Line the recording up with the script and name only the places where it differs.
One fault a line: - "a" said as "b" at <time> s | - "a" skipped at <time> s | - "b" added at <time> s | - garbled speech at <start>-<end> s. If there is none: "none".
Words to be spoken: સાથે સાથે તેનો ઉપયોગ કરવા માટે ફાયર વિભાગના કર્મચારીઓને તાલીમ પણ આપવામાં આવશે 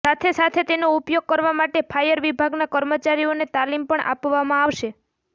none